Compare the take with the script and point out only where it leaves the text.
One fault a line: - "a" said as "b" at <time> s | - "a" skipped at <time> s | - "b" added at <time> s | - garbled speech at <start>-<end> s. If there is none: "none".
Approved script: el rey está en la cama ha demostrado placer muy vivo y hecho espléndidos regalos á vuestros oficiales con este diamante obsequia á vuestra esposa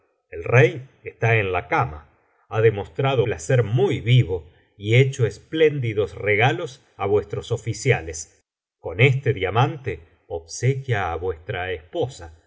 none